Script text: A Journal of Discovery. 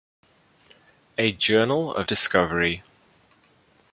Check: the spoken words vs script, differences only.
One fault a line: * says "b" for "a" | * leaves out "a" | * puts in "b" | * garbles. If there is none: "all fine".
all fine